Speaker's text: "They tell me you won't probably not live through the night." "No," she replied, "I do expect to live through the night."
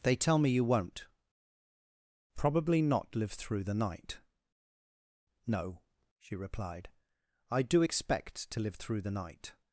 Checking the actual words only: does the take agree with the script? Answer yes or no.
yes